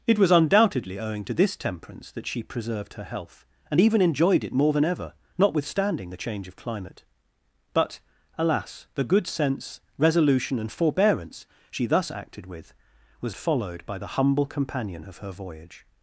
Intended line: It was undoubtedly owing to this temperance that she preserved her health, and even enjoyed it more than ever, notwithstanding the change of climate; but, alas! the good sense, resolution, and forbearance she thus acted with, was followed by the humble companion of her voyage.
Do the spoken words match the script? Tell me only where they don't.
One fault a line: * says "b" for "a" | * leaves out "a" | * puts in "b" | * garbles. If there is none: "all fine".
all fine